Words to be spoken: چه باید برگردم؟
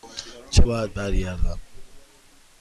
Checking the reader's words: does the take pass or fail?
pass